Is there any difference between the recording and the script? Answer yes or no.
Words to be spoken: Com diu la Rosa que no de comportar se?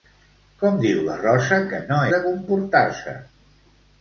no